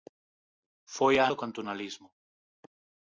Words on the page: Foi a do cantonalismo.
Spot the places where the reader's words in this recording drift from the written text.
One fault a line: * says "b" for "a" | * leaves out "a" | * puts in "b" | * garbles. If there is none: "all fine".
all fine